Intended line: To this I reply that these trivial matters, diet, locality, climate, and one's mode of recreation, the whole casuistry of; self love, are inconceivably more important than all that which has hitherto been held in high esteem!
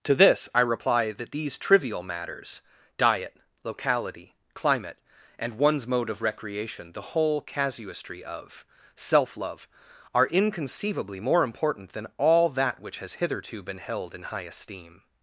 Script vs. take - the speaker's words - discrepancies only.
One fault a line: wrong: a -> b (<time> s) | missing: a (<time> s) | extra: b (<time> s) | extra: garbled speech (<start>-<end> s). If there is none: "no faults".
no faults